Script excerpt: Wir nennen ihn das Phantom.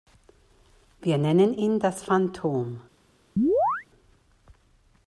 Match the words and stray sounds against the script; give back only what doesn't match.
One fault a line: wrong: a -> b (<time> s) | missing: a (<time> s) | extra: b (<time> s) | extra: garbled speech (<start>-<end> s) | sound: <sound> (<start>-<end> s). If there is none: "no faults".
sound: chirp (3.4-3.9 s)